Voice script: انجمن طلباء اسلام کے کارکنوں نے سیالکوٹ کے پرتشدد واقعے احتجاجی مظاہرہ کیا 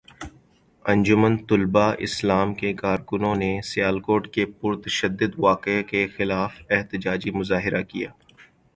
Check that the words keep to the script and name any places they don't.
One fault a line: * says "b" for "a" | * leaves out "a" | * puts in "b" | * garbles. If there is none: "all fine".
* puts in "کے خلاف"